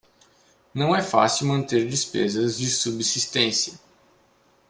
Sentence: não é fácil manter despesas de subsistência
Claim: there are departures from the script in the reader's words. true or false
false